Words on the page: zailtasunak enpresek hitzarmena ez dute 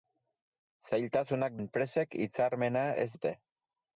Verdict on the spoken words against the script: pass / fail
pass